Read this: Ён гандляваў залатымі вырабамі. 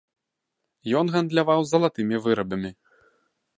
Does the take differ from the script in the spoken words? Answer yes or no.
no